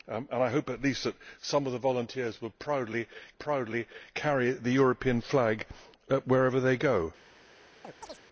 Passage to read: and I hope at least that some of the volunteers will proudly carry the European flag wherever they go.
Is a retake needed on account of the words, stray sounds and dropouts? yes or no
yes